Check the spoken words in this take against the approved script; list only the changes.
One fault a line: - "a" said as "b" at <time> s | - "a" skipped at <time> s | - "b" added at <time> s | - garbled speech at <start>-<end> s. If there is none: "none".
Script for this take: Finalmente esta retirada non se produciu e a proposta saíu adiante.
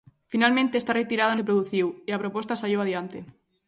- "non" skipped at 1.4 s